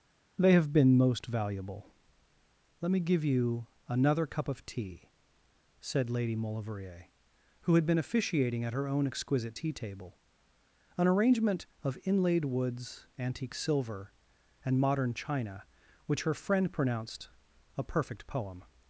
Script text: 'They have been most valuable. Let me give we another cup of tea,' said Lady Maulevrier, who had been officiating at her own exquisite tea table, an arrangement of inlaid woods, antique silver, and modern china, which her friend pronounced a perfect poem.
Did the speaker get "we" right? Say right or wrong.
wrong